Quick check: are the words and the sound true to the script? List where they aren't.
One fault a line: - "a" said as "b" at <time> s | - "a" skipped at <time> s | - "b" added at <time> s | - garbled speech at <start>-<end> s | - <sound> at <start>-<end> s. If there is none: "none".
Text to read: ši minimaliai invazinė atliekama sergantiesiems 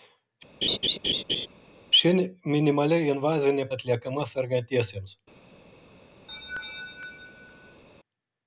- laugh at 0.6-1.5 s
- laugh at 6.3-7.8 s